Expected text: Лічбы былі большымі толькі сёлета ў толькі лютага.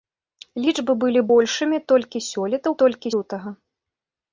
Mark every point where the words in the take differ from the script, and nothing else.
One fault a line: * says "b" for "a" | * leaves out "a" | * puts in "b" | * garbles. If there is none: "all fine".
all fine